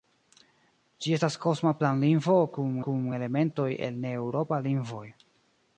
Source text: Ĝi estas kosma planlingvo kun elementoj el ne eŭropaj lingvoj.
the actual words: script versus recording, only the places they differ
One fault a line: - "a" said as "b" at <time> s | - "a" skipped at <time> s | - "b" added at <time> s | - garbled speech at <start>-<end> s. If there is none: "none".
- "kun" added at 2.9 s